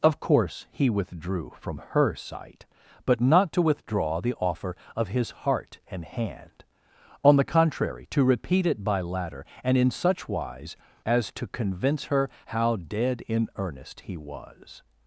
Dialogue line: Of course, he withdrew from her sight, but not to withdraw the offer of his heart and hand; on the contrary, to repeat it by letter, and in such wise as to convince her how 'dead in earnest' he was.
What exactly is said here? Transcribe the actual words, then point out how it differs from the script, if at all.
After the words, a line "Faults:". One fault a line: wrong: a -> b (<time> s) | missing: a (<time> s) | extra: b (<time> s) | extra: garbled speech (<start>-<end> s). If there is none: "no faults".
Of course, he withdrew from her sight, but not to withdraw the offer of his heart and hand; on the contrary, to repeat it by ladder, and in such wise as to convince her how 'dead in earnest' he was.
Faults:
wrong: letter -> ladder (9.0 s)